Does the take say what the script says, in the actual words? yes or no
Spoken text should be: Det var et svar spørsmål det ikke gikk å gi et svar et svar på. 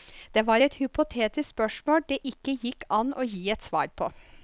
no